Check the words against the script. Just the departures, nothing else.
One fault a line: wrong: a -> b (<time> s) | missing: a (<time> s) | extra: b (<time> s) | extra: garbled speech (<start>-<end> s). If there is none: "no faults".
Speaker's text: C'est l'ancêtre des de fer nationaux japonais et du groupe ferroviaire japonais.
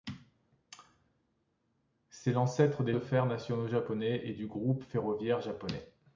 no faults